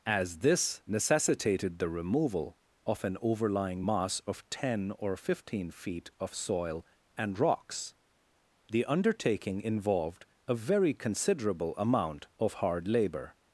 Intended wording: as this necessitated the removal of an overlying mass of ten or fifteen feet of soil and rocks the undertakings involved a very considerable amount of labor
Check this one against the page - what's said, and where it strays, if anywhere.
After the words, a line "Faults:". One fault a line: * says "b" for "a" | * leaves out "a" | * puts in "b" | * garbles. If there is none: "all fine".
as this necessitated the removal of an overlying mass of ten or fifteen feet of soil and rocks the undertaking involved a very considerable amount of hard labor
Faults:
* says "undertaking" for "undertakings"
* puts in "hard"